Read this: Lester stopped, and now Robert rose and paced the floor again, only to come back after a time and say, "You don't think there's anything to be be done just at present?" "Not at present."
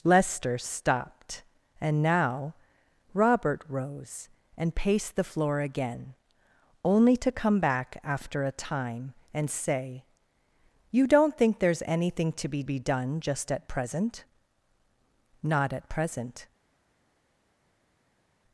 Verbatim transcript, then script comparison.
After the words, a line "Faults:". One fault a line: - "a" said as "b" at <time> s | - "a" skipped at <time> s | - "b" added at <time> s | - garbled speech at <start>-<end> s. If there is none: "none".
Lester stopped, and now Robert rose and paced the floor again, only to come back after a time and say, "You don't think there's anything to be be done just at present?" "Not at present."
Faults:
none